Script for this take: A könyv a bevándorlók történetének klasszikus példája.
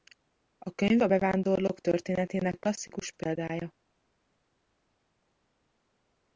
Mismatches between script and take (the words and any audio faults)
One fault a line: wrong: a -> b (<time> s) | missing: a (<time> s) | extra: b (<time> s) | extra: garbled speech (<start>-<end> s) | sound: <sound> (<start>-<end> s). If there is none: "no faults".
no faults